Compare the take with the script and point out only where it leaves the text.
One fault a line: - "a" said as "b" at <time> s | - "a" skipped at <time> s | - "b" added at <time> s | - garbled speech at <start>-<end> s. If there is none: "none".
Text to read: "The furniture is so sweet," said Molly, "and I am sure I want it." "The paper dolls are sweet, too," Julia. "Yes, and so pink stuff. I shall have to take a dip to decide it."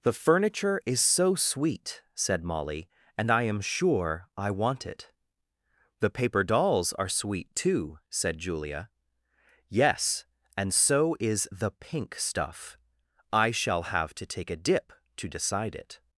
- "said" added at 8.1 s
- "is the" added at 11.2 s